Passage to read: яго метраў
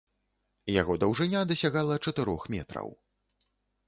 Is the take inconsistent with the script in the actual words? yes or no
yes